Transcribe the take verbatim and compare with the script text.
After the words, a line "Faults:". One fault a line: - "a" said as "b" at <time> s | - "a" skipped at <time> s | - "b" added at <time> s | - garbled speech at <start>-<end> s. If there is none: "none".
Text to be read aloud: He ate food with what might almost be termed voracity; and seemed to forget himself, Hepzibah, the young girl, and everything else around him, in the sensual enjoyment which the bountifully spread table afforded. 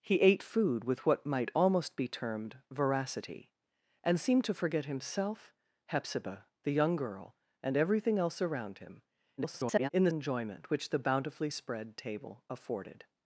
He ate food with what might almost be termed voracity; and seemed to forget himself, Hepzibah, the young girl, and everything else around him, [garbled] in the enjoyment which the bountifully spread table afforded.
Faults:
- garbled speech at 9.4-9.9 s
- "sensual" skipped at 10.1 s